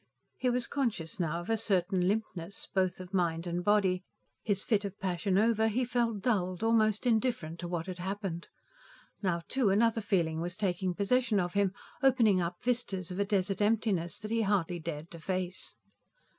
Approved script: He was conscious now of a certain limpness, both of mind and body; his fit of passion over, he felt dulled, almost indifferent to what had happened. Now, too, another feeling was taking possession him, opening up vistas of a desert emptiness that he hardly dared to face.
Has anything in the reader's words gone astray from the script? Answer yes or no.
yes